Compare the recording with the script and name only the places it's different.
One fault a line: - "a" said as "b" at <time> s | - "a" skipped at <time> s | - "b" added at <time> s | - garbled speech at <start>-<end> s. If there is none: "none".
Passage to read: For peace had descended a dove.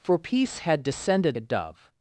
none